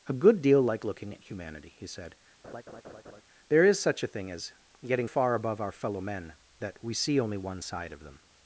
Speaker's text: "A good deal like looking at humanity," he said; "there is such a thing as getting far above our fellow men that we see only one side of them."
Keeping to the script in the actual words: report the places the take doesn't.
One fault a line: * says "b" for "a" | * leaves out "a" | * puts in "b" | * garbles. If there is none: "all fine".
all fine